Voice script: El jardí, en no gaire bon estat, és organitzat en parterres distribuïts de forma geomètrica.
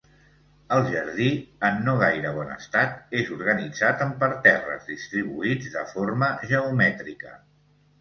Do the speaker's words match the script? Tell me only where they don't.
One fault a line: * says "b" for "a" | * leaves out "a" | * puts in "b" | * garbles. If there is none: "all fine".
all fine